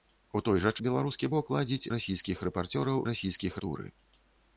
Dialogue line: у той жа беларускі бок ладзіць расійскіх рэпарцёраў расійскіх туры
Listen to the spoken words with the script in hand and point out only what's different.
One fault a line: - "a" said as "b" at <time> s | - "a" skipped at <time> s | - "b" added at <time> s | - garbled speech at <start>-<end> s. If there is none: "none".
none